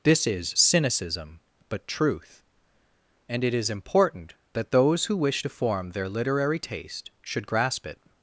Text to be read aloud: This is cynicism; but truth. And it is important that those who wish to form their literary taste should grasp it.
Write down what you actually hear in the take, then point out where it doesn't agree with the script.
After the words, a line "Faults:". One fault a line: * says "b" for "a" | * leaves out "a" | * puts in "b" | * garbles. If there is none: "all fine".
This is cynicism; but truth. And it is important that those who wish to form their literary taste should grasp it.
Faults:
all fine